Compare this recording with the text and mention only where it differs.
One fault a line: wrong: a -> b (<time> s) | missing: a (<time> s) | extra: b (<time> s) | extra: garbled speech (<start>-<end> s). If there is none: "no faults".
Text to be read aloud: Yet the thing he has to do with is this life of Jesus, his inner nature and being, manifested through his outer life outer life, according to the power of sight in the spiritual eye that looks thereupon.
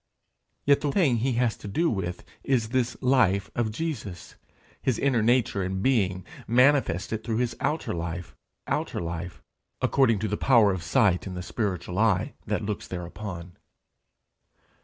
no faults